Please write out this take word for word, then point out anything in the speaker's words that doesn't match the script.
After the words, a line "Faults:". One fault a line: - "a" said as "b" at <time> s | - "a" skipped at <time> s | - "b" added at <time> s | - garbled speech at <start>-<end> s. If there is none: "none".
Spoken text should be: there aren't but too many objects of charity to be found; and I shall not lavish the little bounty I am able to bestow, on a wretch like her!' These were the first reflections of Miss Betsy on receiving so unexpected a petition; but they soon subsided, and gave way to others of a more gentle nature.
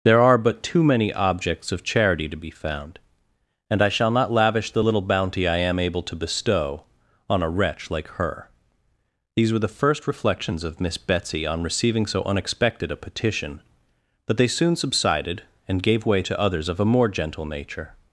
there are but too many objects of charity to be found; and I shall not lavish the little bounty I am able to bestow, on a wretch like her!' These were the first reflections of Miss Betsy on receiving so unexpected a petition; but they soon subsided, and gave way to others of a more gentle nature.
Faults:
- "aren't" said as "are" at 0.2 s